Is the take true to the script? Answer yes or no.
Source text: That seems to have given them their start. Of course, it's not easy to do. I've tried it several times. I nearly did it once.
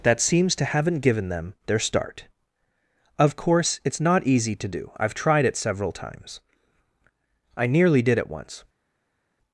no